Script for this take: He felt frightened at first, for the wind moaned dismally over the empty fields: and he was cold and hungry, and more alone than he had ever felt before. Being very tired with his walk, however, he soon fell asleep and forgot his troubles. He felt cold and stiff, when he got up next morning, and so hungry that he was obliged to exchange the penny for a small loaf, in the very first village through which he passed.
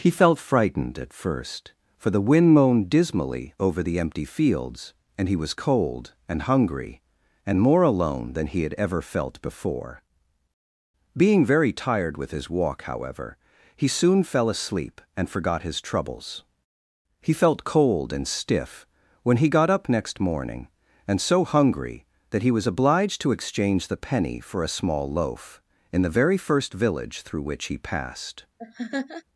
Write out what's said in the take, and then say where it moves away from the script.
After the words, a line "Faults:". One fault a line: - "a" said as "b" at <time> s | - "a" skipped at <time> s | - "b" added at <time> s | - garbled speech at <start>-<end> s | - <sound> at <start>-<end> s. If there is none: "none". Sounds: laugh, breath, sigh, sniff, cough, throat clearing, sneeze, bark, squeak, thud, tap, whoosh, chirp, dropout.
He felt frightened at first, for the wind moaned dismally over the empty fields: and he was cold and hungry, and more alone than he had ever felt before. Being very tired with his walk, however, he soon fell asleep and forgot his troubles. He felt cold and stiff, when he got up next morning, and so hungry that he was obliged to exchange the penny for a small loaf, in the very first village through which he passed.
Faults:
- laugh at 28.6-29.2 s